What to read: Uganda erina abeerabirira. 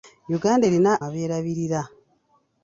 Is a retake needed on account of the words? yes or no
no